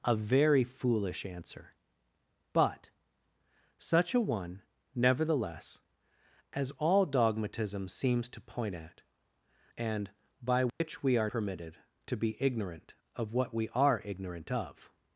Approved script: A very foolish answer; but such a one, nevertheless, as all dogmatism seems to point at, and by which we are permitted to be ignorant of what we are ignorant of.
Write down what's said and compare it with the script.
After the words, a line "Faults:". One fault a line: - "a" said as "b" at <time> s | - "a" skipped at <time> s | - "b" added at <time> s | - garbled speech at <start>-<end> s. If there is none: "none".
A very foolish answer; but such a one, nevertheless, as all dogmatism seems to point at, and by which we are permitted to be ignorant of what we are ignorant of.
Faults:
none